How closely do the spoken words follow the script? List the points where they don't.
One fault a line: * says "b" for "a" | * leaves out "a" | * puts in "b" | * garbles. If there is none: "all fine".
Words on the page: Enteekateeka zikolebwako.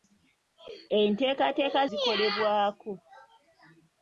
all fine